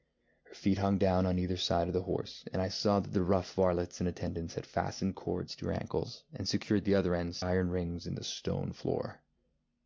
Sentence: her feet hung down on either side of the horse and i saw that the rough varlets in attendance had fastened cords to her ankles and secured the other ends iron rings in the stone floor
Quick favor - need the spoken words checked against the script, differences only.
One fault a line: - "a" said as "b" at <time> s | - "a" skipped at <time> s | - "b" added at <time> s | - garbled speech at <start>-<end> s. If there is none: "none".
none